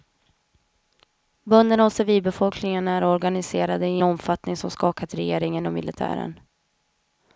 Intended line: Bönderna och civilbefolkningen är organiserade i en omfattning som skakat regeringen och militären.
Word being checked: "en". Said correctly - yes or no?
no